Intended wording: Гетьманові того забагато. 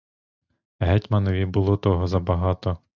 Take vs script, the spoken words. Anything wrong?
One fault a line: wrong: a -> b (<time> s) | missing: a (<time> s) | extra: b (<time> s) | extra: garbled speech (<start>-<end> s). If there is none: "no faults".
extra: було (1.4 s)